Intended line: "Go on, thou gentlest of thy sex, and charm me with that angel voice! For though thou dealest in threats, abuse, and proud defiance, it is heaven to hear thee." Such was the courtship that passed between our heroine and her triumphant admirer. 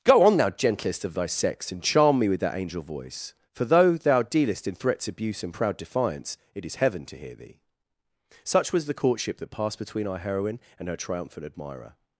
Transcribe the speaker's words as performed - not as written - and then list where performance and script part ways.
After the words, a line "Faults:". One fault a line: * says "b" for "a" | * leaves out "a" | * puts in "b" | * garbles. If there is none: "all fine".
"Go on, thou gentlest of thy sex, and charm me with that angel voice! For though thou dealest in threats, abuse, and proud defiance, it is heaven to hear thee." Such was the courtship that passed between our heroine and her triumphant admirer.
Faults:
all fine